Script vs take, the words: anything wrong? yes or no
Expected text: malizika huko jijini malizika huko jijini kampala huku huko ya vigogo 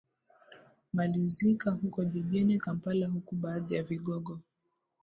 yes